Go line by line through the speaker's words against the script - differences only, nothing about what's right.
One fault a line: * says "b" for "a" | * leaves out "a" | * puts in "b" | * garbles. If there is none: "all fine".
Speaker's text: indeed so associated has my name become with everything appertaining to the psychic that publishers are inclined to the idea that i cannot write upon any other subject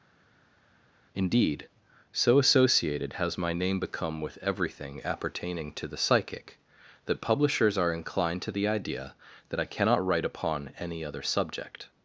all fine